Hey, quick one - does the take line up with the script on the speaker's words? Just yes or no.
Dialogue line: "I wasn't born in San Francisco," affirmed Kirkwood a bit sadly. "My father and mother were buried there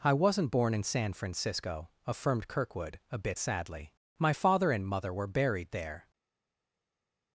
yes